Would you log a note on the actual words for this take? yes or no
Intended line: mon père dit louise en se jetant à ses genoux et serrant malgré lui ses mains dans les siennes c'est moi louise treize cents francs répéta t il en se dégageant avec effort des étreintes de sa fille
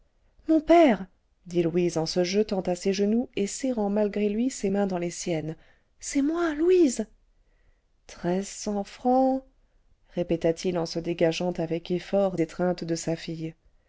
yes